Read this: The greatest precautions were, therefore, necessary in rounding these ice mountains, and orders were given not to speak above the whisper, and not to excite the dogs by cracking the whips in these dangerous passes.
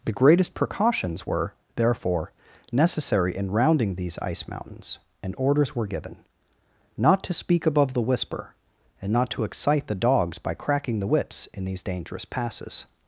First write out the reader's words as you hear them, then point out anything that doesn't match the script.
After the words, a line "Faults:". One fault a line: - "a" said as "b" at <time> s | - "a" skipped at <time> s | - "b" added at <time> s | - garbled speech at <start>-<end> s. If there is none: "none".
The greatest precautions were, therefore, necessary in rounding these ice mountains, and orders were given not to speak above the whisper, and not to excite the dogs by cracking the whips in these dangerous passes.
Faults:
none